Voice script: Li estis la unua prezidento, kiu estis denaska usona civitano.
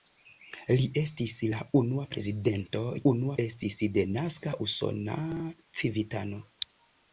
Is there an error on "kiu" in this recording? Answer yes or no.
yes